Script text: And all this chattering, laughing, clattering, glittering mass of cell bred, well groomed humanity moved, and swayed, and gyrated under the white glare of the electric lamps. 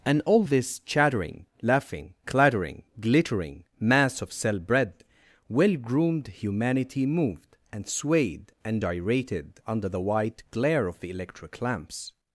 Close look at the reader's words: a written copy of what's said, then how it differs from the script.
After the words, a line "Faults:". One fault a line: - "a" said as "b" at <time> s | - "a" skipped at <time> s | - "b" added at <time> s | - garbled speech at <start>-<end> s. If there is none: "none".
And all this chattering, laughing, clattering, glittering mass of cell bred, well groomed humanity moved, and swayed, and gyrated under the white glare of the electric lamps.
Faults:
none